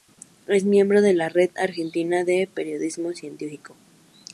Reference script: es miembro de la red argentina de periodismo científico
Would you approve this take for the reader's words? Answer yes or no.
yes